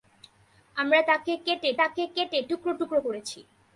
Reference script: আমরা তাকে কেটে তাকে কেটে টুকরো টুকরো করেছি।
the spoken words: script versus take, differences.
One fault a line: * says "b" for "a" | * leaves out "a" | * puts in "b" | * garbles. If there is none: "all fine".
all fine